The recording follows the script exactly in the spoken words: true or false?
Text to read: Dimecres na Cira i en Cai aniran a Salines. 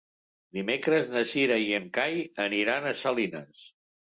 true